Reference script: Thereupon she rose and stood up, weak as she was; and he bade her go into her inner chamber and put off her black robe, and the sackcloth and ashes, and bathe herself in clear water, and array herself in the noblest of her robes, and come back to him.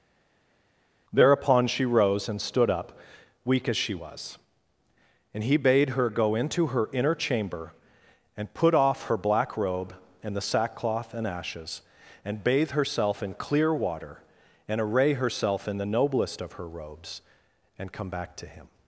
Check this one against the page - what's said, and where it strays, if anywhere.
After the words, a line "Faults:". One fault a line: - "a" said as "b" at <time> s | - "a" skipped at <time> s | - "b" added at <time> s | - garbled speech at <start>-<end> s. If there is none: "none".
Thereupon she rose and stood up, weak as she was; and he bade her go into her inner chamber and put off her black robe, and the sackcloth and ashes, and bathe herself in clear water, and array herself in the noblest of her robes, and come back to him.
Faults:
none